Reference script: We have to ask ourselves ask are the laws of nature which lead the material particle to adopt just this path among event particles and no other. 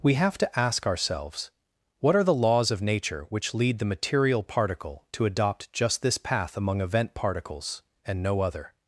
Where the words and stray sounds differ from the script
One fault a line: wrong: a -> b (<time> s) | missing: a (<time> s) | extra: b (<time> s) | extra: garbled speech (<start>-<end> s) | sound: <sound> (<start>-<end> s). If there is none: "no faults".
wrong: ask -> what (2.0 s)